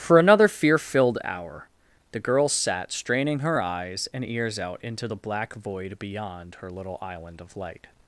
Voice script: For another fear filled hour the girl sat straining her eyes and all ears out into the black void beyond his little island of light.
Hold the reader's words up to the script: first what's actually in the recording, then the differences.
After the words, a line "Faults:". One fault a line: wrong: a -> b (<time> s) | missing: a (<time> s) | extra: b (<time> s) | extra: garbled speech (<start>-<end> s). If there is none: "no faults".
For another fear filled hour the girl sat straining her eyes and ears out into the black void beyond her little island of light.
Faults:
missing: all (4.2 s)
wrong: his -> her (6.6 s)